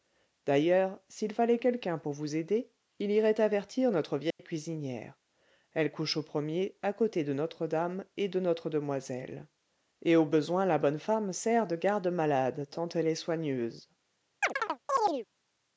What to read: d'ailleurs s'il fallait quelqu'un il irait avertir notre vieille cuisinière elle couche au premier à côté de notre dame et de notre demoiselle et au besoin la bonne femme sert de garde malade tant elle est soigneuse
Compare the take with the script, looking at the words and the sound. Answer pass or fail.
fail